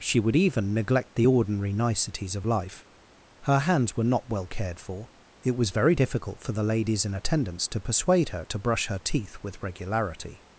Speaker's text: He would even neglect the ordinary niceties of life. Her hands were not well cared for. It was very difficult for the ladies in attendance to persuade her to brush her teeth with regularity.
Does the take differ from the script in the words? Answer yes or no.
yes